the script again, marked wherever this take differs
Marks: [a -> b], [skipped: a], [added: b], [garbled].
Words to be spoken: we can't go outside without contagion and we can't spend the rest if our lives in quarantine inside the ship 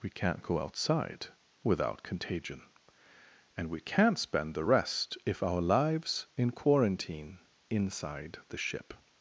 we can't go outside without contagion and we can't spend the rest if our lives in quarantine inside the ship